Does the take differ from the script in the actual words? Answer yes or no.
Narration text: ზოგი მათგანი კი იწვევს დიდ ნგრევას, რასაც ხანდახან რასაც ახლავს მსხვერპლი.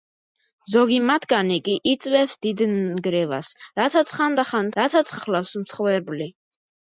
no